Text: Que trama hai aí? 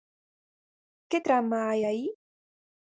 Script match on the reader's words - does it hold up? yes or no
yes